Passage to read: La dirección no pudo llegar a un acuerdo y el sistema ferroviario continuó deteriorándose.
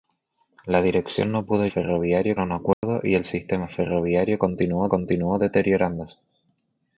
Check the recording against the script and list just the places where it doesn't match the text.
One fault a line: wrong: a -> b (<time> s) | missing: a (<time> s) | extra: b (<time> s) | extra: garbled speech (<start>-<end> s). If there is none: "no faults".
wrong: llegar -> ferroviario (1.6 s)
extra: continuó (4.9 s)